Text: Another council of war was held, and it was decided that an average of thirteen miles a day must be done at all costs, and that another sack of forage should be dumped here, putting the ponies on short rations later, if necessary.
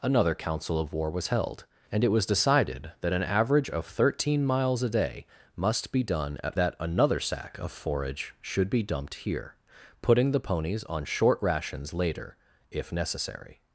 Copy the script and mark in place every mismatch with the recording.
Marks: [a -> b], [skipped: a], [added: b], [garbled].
Another council of war was held, and it was decided that an average of thirteen miles a day must be done at [skipped: all costs, and] that another sack of forage should be dumped here, putting the ponies on short rations later, if necessary.